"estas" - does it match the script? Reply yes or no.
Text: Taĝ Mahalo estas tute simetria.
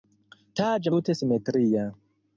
no